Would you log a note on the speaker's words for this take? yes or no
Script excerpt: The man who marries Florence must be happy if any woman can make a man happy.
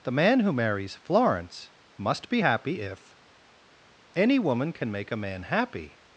no